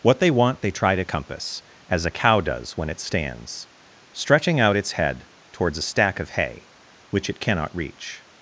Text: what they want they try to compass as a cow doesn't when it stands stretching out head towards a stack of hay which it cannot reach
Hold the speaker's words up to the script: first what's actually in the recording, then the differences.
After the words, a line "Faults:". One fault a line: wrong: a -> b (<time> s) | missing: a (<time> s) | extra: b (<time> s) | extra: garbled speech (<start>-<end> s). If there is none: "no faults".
what they want they try to compass as a cow does when it stands stretching out its head towards a stack of hay which it cannot reach
Faults:
wrong: doesn't -> does (2.4 s)
extra: its (4.8 s)